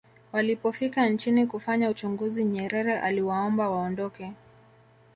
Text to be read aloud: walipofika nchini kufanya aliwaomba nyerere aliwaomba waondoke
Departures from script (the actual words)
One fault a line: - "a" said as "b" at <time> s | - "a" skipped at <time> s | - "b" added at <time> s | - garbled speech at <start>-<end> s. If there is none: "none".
- "aliwaomba" said as "uchunguzi" at 1.9 s